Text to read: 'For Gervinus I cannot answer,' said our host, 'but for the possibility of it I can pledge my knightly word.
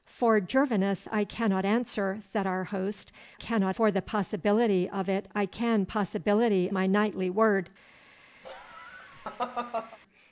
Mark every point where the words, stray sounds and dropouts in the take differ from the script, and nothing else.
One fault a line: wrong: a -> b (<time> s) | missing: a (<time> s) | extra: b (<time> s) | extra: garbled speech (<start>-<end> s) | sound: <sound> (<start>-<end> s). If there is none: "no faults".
wrong: but -> cannot (3.4 s)
wrong: pledge -> possibility (5.8 s)
sound: laugh (8.4-10.0 s)